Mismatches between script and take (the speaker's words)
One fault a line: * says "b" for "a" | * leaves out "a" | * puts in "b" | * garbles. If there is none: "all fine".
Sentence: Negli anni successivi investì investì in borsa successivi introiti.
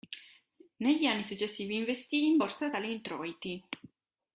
* leaves out "investì"
* says "tali" for "successivi"